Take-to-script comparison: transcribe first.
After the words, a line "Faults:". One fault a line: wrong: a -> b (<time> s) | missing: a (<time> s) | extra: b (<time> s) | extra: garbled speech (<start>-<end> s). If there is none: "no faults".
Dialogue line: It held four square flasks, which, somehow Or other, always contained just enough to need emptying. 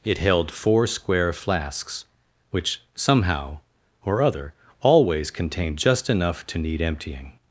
It held four square flasks, which, somehow Or other, always contained just enough to need emptying.
Faults:
no faults